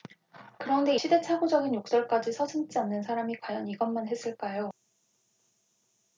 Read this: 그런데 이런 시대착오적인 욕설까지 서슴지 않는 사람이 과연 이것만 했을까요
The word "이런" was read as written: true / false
false